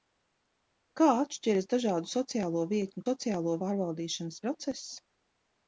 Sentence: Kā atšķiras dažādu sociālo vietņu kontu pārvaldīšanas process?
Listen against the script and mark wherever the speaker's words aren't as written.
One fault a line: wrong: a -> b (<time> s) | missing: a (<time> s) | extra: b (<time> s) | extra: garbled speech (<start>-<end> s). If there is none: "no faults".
wrong: kontu -> sociālo (3.0 s)